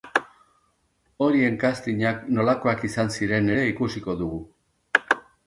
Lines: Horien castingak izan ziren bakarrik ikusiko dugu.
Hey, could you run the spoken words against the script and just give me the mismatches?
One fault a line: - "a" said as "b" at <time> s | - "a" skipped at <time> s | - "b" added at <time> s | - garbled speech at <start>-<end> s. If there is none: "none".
- "nolakoak" added at 2.4 s
- "bakarrik" said as "ere" at 3.6 s